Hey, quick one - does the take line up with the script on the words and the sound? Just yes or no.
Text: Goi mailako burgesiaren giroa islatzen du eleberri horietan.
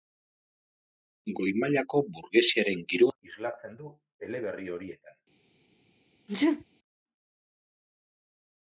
no